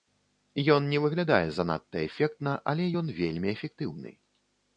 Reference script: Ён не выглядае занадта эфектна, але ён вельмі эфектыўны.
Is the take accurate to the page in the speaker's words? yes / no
yes